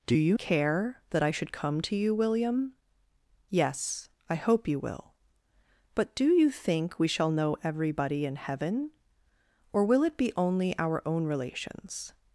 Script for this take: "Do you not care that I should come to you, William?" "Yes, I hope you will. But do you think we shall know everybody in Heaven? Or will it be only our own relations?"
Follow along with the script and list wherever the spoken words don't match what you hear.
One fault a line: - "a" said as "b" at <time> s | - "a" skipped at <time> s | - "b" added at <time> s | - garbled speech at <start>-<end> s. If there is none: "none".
- "not" skipped at 0.4 s